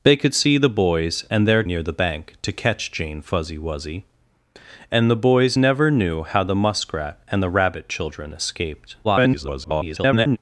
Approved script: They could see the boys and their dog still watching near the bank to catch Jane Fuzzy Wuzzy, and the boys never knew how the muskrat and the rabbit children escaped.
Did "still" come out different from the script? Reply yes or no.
yes